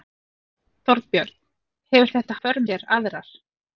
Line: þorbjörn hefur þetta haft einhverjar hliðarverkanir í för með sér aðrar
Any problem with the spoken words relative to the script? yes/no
yes